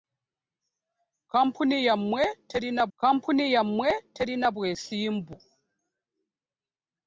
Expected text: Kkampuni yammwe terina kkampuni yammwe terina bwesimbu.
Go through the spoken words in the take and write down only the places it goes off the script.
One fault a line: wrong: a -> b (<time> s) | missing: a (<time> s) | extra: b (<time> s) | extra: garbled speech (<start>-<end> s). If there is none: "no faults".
no faults